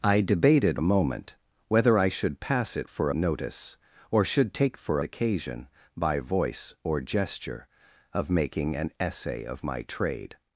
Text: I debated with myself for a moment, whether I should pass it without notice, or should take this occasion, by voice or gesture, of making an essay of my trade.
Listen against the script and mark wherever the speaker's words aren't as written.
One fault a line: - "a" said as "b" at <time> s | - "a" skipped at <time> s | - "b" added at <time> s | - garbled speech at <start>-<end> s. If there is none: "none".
- "with myself for" skipped at 0.8 s
- "without" said as "for" at 2.8 s
- "this" said as "for" at 4.7 s